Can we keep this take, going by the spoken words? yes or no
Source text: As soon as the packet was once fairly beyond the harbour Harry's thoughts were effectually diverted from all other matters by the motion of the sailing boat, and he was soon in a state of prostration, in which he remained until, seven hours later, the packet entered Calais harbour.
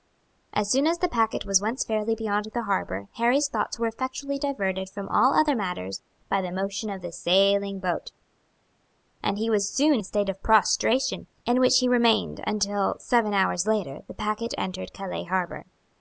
no